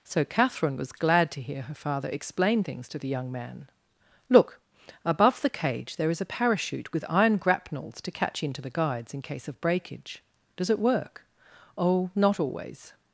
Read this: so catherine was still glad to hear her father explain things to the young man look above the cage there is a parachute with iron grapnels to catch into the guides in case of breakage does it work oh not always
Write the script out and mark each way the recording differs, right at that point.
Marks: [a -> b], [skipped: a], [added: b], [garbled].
so catherine was [skipped: still] glad to hear her father explain things to the young man look above the cage there is a parachute with iron grapnels to catch into the guides in case of breakage does it work oh not always